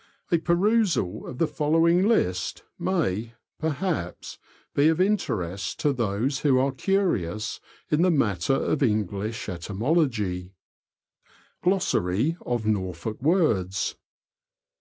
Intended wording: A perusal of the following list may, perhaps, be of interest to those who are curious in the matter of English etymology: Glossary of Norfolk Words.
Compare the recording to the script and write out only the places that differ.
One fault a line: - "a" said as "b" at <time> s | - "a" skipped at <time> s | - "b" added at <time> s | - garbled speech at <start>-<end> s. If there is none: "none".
none